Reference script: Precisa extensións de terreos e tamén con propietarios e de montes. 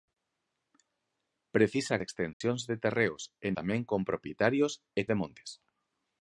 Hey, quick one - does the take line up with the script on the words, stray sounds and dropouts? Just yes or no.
no